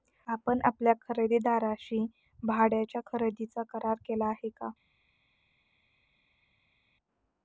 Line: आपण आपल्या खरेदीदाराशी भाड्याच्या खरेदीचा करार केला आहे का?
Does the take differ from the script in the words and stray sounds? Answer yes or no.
no